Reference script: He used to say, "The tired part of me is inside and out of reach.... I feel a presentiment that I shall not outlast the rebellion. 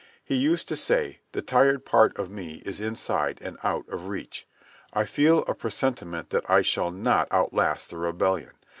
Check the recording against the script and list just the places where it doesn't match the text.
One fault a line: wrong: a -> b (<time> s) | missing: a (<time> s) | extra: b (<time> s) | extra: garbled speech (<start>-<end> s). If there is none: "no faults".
no faults